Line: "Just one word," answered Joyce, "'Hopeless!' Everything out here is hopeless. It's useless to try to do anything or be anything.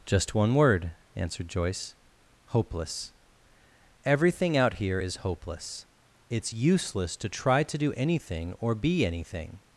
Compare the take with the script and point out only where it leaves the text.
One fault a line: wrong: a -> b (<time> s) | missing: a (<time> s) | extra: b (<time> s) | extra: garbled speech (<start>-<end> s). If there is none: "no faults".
no faults